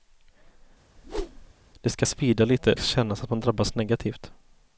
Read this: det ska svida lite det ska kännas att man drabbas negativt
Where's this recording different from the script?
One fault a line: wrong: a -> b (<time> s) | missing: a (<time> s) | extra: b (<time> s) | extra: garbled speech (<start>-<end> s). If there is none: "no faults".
missing: det (2.7 s)